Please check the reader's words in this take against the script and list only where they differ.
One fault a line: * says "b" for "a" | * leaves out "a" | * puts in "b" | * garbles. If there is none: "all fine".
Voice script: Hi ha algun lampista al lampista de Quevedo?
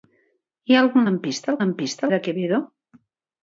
all fine